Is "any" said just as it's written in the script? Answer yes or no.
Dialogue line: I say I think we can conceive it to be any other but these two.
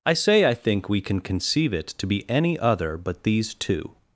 yes